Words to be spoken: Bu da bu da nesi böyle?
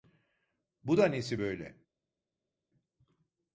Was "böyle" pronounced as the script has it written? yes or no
yes